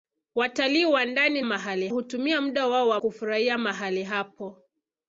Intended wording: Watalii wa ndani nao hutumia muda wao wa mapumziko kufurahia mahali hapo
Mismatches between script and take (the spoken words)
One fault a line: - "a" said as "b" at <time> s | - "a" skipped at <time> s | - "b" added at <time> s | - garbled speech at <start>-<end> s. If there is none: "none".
- "nao" said as "mahali" at 1.4 s
- "mapumziko" skipped at 3.0 s